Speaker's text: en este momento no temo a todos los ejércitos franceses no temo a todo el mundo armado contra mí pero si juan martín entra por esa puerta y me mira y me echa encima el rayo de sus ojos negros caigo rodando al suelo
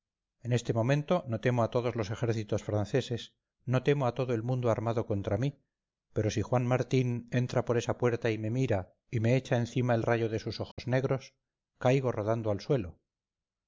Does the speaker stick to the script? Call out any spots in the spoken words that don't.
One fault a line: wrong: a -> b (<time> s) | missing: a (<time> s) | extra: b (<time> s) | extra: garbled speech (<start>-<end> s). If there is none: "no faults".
no faults